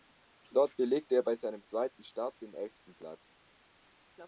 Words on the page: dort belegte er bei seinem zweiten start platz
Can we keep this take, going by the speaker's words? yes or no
no